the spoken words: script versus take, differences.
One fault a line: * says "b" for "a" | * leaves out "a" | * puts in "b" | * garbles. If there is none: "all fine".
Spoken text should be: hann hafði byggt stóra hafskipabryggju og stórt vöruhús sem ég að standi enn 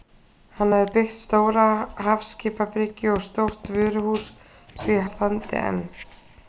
all fine